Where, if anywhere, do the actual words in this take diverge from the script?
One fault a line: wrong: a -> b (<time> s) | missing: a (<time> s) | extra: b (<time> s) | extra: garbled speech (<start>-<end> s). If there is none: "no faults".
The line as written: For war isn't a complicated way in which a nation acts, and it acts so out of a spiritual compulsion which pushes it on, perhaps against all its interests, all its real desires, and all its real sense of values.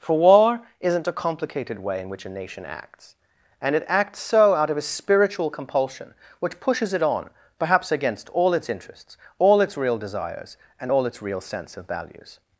no faults